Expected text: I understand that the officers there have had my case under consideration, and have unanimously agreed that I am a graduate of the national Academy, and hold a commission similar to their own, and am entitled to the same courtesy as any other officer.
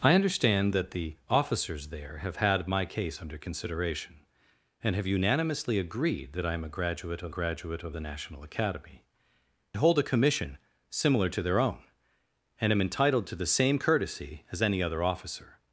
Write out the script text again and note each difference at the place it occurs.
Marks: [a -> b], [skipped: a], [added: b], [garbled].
I understand that the officers there have had my case under consideration, and have unanimously agreed that I am a graduate of [added: graduate of] the national Academy, [skipped: and] hold a commission similar to their own, and am entitled to the same courtesy as any other officer.